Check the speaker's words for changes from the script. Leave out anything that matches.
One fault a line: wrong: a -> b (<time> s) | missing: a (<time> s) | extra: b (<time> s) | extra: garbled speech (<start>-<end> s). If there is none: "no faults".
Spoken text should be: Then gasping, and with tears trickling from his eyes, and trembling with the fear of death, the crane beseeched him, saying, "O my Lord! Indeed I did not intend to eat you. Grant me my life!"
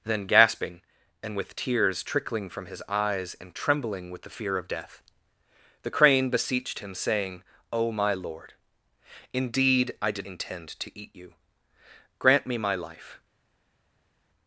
missing: not (10.3 s)